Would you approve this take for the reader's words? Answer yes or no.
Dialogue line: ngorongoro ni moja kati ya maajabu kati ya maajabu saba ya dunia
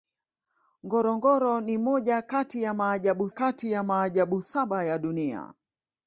yes